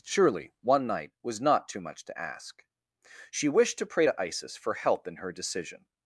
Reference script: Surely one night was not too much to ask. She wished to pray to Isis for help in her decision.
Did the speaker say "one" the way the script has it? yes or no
yes